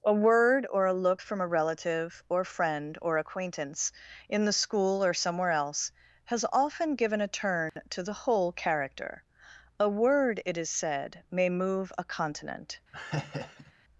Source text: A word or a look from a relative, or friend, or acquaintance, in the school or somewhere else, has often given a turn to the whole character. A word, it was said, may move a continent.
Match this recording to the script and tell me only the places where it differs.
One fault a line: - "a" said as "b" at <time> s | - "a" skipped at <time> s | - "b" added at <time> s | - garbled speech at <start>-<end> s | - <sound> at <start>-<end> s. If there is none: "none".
- dropout at 7.7-7.8 s
- "was" said as "is" at 10.5 s
- laugh at 12.9-13.7 s